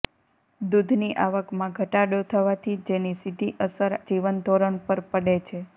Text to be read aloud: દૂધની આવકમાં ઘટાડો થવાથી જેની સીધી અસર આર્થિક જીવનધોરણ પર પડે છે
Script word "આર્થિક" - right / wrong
wrong